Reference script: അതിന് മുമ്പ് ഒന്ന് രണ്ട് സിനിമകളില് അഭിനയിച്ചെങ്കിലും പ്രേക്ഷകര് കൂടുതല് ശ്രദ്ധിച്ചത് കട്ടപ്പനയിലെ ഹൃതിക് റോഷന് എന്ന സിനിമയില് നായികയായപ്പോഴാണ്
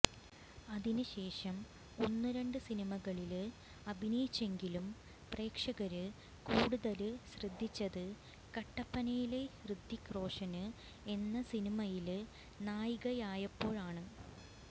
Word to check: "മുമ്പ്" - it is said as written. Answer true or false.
false